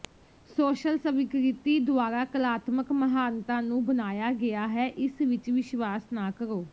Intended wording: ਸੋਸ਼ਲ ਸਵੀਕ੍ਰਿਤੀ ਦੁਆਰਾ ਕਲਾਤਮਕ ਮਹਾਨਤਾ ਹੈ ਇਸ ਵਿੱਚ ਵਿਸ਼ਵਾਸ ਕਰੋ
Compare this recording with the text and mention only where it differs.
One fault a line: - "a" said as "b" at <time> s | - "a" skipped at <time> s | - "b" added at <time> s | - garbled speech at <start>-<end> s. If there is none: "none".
- "ਨੂੰ ਬਣਾਇਆ ਗਿਆ" added at 3.6 s
- "ਨਾ" added at 6.1 s